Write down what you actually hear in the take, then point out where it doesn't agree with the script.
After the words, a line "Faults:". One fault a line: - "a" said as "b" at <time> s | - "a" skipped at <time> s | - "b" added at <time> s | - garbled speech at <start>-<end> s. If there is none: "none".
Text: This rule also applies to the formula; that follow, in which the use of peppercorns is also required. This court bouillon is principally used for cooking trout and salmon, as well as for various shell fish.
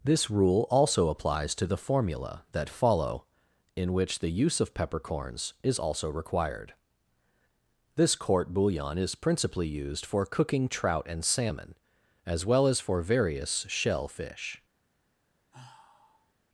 This rule also applies to the formula; that follow, in which the use of peppercorns is also required. This court bouillon is principally used for cooking trout and salmon, as well as for various shell fish.
Faults:
none